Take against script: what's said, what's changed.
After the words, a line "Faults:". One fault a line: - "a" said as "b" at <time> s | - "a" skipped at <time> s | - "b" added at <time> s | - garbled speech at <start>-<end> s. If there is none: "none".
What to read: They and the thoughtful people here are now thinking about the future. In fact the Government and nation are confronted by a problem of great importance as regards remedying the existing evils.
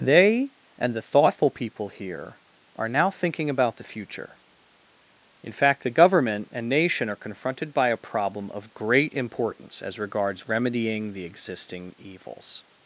They and the thoughtful people here are now thinking about the future. In fact the Government and nation are confronted by a problem of great importance as regards remedying the existing evils.
Faults:
none